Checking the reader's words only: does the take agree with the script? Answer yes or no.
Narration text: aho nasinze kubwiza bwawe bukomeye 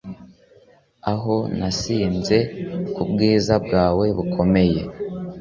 yes